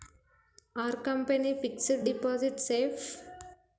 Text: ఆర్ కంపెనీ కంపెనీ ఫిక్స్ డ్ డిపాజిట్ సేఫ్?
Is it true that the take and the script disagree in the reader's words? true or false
true